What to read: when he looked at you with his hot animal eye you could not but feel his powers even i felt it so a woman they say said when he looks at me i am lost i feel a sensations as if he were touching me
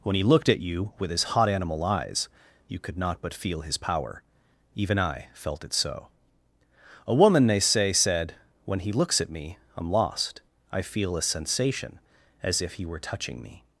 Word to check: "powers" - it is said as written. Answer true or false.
false